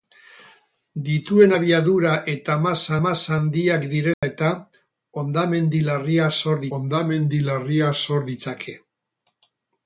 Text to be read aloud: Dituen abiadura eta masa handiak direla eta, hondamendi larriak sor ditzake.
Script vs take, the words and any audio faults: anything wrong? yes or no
yes